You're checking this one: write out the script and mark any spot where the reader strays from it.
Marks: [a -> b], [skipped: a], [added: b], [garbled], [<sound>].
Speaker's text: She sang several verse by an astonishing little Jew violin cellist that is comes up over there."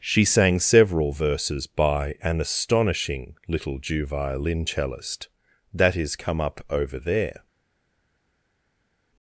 She sang several [verse -> verses] by an astonishing little Jew violin cellist that is [comes -> come] up over there."